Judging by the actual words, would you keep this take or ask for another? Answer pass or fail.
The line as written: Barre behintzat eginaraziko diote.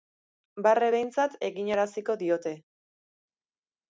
pass